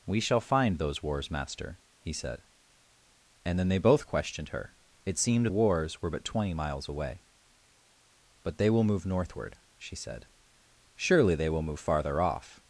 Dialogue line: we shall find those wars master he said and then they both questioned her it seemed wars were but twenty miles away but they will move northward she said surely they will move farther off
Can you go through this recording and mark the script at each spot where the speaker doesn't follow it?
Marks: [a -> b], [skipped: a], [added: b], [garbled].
we shall find those wars master he said and then they both questioned her it seemed wars were but twenty miles away but they will move northward she said surely they will move farther off